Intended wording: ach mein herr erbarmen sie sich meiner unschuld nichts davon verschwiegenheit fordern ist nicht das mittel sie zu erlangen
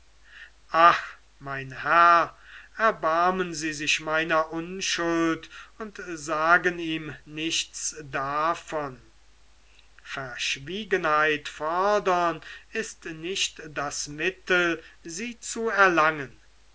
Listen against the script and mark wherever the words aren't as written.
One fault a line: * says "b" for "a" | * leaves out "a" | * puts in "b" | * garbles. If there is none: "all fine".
* puts in "und sagen ihm"